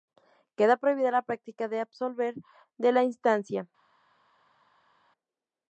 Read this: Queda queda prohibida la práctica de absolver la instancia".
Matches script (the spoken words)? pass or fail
fail